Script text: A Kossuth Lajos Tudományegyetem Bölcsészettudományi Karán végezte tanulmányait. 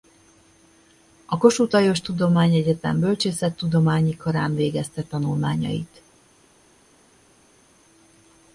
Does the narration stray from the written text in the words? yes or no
no